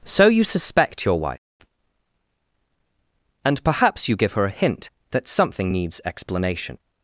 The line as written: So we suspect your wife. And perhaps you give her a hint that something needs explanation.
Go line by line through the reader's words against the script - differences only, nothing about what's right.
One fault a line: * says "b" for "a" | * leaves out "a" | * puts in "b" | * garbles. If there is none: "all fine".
* says "you" for "we"